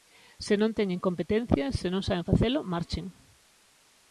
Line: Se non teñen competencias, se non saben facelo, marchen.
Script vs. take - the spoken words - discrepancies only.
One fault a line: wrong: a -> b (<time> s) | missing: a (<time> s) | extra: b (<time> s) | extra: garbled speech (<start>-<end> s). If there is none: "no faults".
no faults